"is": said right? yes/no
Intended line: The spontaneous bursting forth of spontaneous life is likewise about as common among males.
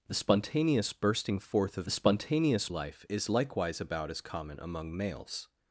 yes